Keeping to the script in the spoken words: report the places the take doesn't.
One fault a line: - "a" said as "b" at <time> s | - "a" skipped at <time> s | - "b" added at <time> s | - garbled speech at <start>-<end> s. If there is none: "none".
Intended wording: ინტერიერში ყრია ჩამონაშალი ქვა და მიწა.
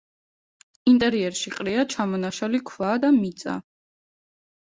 none